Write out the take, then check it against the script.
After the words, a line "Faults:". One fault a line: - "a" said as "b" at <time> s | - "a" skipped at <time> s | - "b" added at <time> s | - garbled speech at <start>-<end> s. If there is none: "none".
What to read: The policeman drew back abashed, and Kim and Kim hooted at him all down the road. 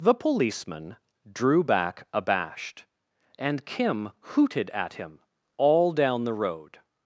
The policeman drew back abashed, and Kim hooted at him all down the road.
Faults:
- "and Kim" skipped at 4.1 s